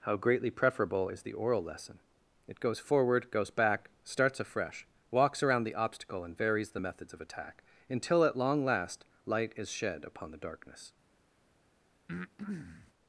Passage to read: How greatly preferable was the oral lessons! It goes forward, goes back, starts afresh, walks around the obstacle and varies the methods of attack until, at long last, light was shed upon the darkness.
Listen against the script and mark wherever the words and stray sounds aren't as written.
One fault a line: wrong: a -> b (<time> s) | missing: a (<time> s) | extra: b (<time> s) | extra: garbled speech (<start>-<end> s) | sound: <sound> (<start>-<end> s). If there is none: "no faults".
wrong: was -> is (1.1 s)
wrong: lessons -> lesson (1.6 s)
wrong: was -> is (9.6 s)
sound: breath (12.1-12.9 s)